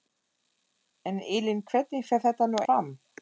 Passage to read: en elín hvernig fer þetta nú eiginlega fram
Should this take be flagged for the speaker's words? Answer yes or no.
yes